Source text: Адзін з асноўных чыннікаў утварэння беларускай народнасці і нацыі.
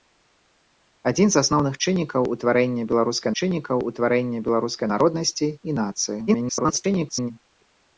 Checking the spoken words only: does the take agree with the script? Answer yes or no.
no